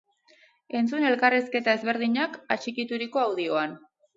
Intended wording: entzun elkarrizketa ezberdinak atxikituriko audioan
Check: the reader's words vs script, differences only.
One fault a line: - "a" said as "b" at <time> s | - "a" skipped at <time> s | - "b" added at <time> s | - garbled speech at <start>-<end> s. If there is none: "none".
none